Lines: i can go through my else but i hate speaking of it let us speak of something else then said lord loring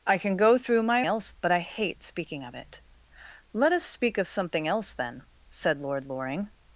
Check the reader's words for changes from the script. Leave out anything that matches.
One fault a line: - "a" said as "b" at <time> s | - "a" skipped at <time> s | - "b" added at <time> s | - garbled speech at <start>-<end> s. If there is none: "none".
none